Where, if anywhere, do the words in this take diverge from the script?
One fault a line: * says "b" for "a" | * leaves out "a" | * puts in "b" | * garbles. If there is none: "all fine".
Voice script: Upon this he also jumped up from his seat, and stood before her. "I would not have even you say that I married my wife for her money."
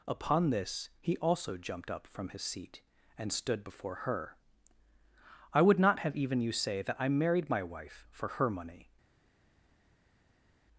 all fine